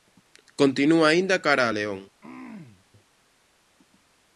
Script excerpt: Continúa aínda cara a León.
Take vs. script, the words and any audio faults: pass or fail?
fail